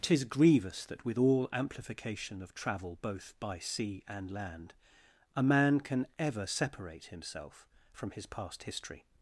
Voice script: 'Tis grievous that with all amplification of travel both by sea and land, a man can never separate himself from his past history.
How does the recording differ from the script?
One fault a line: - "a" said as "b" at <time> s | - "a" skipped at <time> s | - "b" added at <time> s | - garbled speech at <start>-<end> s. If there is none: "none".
- "never" said as "ever" at 6.2 s